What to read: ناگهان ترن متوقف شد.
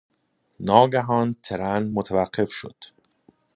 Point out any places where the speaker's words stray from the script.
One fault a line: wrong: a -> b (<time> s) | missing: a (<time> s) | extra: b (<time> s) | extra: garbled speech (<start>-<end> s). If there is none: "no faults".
no faults